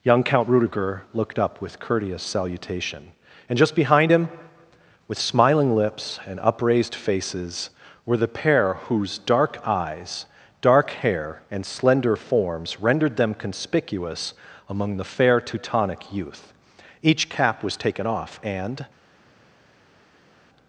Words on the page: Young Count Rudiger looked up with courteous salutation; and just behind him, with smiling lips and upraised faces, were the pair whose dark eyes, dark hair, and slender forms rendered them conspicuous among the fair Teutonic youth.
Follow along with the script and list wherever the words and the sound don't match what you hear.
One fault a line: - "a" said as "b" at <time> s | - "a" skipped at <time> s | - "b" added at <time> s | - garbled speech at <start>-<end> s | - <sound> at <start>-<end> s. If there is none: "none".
- "Each cap was taken off and" added at 17.0 s